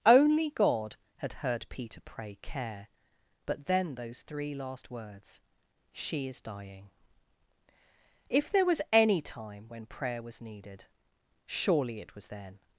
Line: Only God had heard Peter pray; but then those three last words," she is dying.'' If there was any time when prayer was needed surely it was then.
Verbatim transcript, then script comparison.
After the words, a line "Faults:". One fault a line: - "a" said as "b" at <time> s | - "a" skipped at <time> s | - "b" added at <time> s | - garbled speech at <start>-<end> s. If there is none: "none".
Only God had heard Peter pray; care but then those three last words," she is dying.'' If there was any time when prayer was needed surely it was then.
Faults:
- "care" added at 2.4 s